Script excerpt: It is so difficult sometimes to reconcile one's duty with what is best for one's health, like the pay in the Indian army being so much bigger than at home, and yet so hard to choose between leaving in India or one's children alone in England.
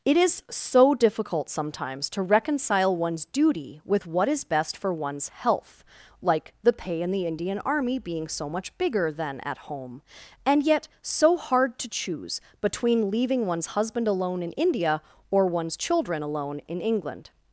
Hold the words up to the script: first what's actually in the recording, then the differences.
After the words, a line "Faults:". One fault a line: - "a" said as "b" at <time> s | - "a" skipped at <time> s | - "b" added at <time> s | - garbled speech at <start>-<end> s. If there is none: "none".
It is so difficult sometimes to reconcile one's duty with what is best for one's health, like the pay in the Indian army being so much bigger than at home, and yet so hard to choose between leaving one's husband alone in India or one's children alone in England.
Faults:
- "one's husband alone" added at 13.4 s